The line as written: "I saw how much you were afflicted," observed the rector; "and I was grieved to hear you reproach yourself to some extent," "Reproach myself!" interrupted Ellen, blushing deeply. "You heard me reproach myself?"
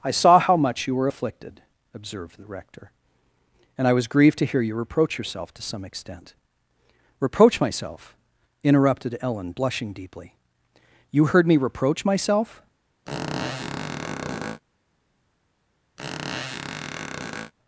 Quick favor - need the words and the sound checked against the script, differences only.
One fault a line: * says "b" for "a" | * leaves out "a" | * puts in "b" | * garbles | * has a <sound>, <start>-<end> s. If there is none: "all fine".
* has a squeak, 13.1-14.6 s
* has a squeak, 16.0-17.5 s